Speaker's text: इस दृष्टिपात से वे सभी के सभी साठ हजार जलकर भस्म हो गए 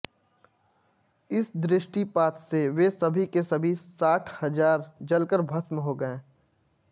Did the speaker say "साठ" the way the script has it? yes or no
yes